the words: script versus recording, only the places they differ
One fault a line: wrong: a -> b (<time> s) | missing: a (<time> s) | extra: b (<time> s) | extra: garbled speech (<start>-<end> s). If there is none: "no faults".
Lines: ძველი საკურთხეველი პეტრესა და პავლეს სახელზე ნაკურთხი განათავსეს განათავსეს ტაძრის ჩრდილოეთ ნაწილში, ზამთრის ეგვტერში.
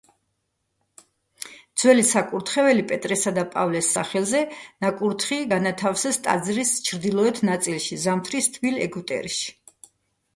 missing: განათავსეს (6.2 s)
extra: თბილ (8.6 s)